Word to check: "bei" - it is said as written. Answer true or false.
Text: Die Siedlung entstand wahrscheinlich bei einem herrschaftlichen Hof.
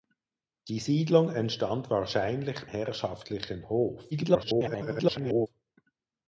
false